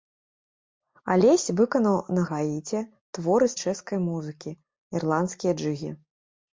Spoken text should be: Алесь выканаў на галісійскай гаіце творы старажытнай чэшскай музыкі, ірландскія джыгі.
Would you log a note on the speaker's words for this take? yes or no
yes